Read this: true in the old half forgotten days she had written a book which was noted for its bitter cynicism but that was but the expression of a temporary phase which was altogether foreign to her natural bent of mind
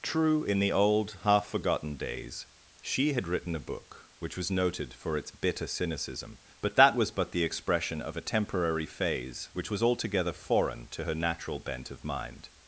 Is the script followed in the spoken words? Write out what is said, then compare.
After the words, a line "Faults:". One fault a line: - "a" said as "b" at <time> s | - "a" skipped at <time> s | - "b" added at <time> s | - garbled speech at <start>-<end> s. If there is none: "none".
true in the old half forgotten days she had written a book which was noted for its bitter cynicism but that was but the expression of a temporary phase which was altogether foreign to her natural bent of mind
Faults:
none